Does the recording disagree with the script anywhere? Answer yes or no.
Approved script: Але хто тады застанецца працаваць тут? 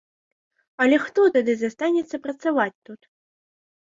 no